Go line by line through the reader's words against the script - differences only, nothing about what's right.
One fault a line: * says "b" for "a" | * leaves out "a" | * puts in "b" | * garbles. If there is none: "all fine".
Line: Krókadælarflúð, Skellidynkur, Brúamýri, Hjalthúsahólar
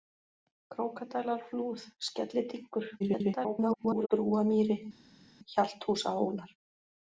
* garbles